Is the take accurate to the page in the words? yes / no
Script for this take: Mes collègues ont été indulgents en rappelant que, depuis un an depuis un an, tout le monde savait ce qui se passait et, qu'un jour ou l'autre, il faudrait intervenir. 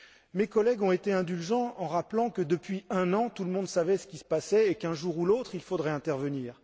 no